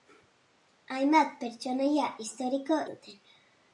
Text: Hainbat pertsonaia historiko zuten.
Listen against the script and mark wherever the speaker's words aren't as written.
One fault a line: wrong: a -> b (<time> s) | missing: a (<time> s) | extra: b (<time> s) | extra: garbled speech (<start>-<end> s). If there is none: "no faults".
no faults